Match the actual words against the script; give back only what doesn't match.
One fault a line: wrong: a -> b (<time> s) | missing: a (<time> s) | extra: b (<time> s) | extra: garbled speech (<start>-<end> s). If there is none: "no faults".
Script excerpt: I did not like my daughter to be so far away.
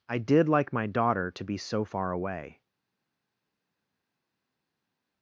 missing: not (0.5 s)